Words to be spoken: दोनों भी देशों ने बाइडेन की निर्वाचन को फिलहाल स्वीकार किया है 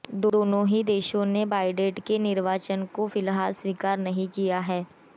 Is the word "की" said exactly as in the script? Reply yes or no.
no